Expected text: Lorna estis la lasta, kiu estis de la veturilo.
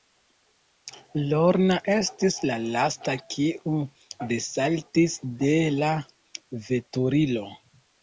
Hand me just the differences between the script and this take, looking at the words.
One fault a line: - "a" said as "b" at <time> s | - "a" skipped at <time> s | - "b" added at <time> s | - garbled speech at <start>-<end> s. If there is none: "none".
- "estis" said as "desaltis" at 4.3 s